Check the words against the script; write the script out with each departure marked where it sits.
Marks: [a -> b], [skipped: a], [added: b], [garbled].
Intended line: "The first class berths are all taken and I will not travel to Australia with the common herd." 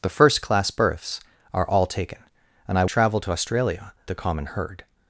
"The first class berths are all taken and I [skipped: will not] travel to Australia [skipped: with] the common herd."